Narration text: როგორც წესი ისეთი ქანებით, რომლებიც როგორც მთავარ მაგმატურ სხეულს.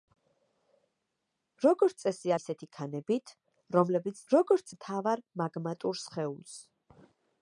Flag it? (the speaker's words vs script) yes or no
no